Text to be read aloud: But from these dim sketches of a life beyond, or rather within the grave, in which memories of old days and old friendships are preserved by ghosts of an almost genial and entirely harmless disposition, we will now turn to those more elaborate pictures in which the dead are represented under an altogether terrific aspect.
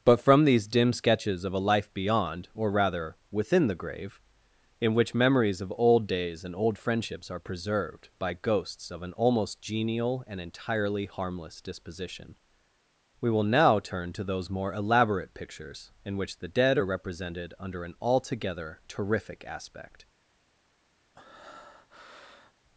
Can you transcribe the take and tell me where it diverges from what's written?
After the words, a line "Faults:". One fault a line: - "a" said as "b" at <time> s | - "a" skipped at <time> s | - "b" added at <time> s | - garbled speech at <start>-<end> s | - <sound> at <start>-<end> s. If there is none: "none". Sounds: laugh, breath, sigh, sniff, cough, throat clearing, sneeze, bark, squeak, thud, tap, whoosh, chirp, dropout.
But from these dim sketches of a life beyond, or rather within the grave, in which memories of old days and old friendships are preserved by ghosts of an almost genial and entirely harmless disposition, we will now turn to those more elaborate pictures in which the dead are represented under an altogether terrific aspect.
Faults:
- breath at 21.1-22.5 s